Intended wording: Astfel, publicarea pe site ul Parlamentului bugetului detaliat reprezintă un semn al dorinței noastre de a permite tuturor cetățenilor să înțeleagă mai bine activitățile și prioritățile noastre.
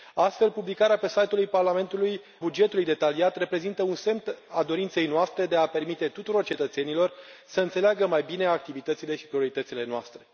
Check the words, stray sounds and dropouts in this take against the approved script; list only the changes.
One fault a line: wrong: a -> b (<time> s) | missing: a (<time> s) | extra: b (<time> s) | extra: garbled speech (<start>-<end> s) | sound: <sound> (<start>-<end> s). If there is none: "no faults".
no faults